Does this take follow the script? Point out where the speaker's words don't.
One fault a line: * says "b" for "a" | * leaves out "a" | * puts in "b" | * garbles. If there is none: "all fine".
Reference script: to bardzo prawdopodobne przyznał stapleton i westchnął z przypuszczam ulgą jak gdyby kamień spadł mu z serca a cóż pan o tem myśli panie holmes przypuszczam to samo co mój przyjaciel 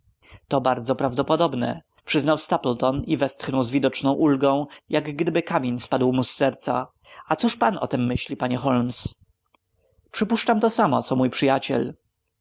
* says "widoczną" for "przypuszczam"